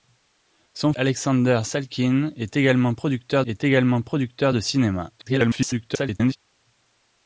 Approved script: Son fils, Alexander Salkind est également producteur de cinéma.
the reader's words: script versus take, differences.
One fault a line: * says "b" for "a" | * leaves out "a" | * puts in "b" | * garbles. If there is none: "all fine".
* leaves out "fils"
* puts in "est également producteur"
* garbles